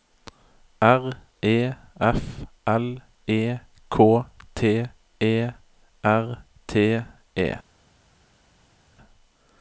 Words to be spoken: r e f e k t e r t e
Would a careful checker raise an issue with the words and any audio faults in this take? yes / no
yes